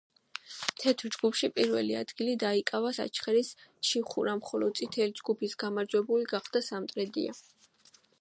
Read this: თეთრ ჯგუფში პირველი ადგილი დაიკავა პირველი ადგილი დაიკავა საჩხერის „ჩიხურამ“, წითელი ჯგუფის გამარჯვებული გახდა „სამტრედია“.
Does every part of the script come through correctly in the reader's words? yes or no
no